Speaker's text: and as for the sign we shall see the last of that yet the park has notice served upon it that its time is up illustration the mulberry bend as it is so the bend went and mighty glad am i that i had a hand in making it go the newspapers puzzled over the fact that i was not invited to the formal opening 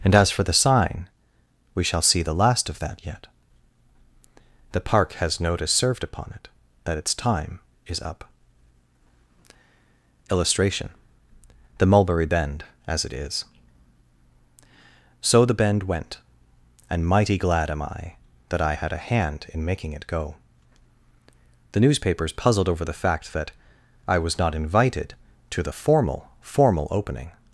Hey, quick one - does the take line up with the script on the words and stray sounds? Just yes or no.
no